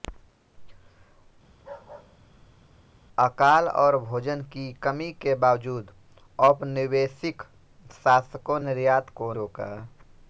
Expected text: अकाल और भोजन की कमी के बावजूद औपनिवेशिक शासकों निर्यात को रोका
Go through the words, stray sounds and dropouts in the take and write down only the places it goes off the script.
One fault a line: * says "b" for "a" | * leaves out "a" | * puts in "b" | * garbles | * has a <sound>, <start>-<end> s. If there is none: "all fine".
* has a bark, 1.5-2.9 s